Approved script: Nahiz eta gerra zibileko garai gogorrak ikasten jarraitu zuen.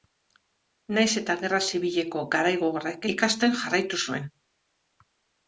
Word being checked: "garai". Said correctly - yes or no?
yes